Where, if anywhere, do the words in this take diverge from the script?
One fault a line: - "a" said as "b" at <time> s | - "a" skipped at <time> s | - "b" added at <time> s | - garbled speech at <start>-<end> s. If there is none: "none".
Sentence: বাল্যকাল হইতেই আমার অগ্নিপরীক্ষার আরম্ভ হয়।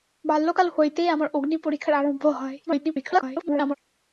- garbled speech at 2.7-3.7 s